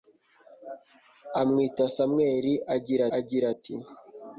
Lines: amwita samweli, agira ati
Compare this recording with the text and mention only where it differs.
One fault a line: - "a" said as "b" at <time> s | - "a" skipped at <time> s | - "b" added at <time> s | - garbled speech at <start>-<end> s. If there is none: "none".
- "agira" added at 3.2 s